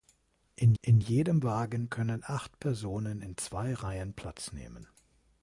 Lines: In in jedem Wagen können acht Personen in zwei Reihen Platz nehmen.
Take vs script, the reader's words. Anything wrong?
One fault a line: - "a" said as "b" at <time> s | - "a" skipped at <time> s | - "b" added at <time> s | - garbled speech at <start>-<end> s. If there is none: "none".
none